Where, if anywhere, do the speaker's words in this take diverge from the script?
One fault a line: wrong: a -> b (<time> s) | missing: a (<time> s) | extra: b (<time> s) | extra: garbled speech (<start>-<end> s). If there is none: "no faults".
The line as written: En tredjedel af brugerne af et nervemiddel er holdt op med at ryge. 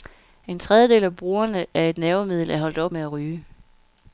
no faults